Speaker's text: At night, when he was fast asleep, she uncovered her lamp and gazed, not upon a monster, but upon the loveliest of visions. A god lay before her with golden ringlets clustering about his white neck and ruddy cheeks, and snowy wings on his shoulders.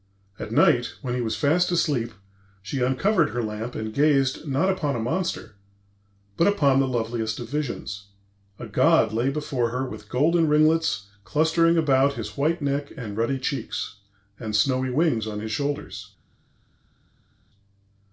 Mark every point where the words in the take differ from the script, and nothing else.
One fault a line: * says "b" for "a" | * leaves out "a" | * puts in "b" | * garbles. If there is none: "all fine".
all fine